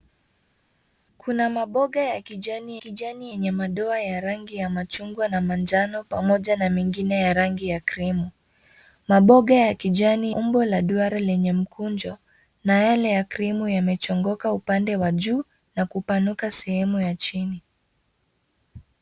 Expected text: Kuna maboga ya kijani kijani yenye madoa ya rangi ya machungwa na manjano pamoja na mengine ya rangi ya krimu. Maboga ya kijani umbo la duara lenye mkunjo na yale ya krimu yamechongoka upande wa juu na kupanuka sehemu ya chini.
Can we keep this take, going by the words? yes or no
yes